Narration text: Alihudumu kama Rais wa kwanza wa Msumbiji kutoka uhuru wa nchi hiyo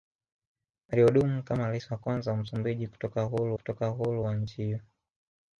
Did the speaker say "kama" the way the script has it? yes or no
yes